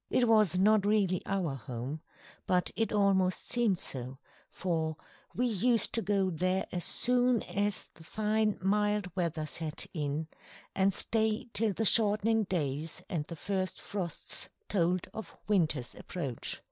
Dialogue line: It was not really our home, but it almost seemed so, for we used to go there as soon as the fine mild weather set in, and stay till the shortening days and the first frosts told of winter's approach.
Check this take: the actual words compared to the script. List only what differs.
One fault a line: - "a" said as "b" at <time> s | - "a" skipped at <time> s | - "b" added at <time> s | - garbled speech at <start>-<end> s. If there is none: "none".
none